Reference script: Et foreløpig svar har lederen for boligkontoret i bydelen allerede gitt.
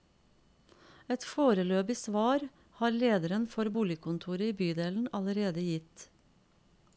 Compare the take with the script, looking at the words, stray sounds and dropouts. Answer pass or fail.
pass